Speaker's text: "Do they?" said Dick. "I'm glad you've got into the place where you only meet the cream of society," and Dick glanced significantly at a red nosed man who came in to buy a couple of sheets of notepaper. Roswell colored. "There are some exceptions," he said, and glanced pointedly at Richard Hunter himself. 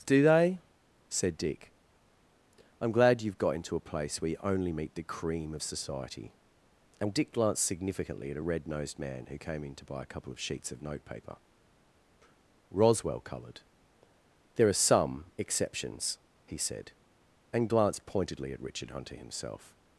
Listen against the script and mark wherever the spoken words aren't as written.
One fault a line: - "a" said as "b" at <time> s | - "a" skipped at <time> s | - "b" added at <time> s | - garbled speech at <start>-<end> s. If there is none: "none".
- "the" said as "a" at 3.8 s